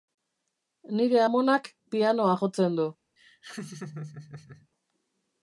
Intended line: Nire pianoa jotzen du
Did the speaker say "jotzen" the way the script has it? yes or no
yes